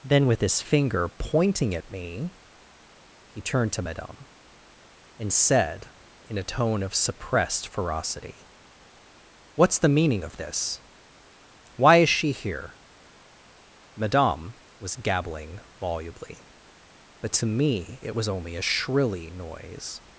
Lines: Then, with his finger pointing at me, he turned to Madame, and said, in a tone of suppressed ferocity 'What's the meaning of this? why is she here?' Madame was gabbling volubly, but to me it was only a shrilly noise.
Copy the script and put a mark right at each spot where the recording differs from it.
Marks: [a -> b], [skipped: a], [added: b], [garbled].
Then, with his finger pointing at me, he turned to Madame, and said, in a tone of suppressed ferocity 'What's the meaning of this? why is she here?' Madame was gabbling volubly, but to me it was only a shrilly noise.